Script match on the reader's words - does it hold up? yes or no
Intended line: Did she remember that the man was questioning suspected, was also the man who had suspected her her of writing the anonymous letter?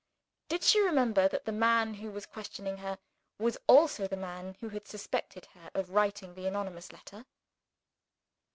no